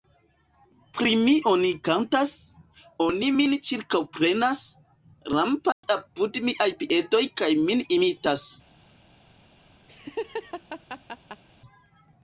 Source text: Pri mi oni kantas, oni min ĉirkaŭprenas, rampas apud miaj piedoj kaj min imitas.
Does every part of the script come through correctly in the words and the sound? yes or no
no